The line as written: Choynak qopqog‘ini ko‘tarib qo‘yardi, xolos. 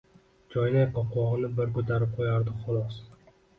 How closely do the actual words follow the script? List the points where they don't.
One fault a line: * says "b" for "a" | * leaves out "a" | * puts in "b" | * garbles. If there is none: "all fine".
* puts in "bir"